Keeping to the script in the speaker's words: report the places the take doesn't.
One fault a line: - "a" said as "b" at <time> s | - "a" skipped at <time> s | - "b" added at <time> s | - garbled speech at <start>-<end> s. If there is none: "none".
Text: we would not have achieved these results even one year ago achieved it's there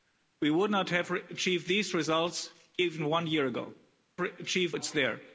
none